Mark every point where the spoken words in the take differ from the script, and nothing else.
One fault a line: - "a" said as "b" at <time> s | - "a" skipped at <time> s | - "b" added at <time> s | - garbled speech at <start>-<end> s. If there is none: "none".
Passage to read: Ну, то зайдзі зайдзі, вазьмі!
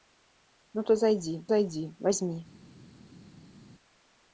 none